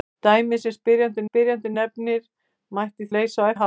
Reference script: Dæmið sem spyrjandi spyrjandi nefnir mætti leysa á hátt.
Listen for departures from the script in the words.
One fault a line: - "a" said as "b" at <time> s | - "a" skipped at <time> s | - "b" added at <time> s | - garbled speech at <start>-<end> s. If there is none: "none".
none